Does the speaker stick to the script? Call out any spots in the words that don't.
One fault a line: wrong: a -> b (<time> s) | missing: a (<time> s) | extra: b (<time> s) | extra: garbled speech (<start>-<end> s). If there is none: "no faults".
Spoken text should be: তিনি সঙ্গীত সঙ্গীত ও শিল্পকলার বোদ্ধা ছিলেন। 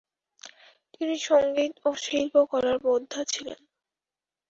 missing: সঙ্গীত (1.7 s)